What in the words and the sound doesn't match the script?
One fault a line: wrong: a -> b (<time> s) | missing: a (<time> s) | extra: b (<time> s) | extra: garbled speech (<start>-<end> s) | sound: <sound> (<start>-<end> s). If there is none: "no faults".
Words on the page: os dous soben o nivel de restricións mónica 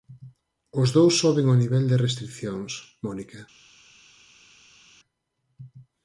no faults